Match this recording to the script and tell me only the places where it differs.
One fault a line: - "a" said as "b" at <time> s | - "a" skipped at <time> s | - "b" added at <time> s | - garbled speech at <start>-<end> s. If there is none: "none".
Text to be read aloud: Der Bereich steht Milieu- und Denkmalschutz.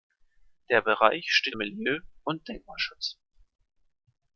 none